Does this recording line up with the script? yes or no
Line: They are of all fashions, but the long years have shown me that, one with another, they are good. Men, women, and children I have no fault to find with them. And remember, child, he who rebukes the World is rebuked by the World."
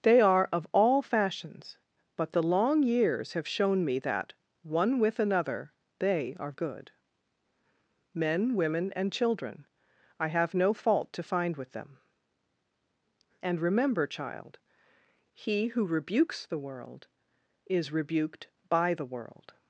yes